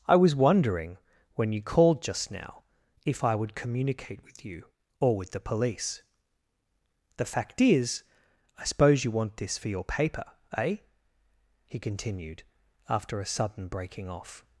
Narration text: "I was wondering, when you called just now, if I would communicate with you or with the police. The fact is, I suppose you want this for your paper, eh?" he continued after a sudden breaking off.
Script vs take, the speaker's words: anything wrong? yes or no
no